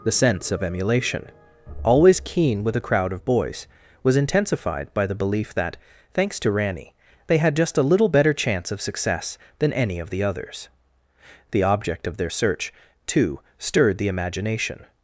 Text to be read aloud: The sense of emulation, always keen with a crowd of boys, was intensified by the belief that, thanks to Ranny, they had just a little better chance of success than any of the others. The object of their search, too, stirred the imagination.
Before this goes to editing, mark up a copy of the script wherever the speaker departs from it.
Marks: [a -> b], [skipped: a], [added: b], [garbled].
The sense of emulation, always keen with a crowd of boys, was intensified by the belief that, thanks to Ranny, they had just a little better chance of success than any of the others. The object of their search, too, stirred the imagination.